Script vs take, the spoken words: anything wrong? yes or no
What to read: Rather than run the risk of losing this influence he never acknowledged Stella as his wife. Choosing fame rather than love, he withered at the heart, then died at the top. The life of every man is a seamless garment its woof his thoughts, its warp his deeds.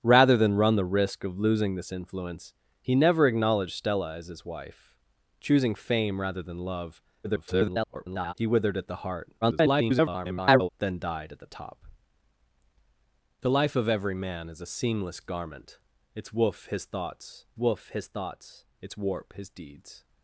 yes